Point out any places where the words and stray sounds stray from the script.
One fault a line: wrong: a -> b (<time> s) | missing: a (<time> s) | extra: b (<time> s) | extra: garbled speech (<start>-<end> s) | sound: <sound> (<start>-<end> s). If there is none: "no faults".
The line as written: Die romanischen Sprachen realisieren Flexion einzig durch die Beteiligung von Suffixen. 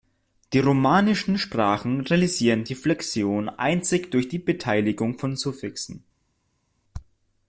extra: die (2.6 s)